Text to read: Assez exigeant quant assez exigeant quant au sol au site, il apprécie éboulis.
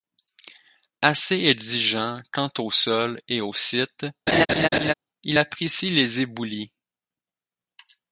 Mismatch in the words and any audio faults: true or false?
true